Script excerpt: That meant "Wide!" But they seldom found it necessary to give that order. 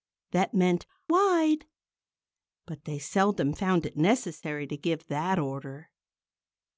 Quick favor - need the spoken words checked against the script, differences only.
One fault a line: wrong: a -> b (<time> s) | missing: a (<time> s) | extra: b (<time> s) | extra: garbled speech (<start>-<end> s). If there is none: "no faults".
no faults